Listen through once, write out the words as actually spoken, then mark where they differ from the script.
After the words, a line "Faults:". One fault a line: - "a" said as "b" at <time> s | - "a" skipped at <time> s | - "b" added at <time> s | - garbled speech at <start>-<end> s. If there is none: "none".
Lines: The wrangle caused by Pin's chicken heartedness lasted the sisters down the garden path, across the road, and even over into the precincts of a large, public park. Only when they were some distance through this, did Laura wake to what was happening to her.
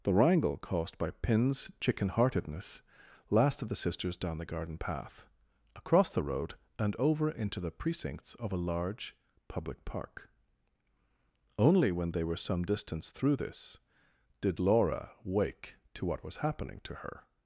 The wrangle caused by Pin's chicken heartedness lasted the sisters down the garden path, across the road, and over into the precincts of a large, public park. Only when they were some distance through this, did Laura wake to what was happening to her.
Faults:
- "even" skipped at 7.0 s